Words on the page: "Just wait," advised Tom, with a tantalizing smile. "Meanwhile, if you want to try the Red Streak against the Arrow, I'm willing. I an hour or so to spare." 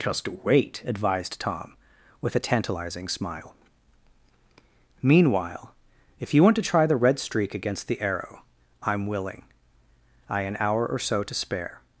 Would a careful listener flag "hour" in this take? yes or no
no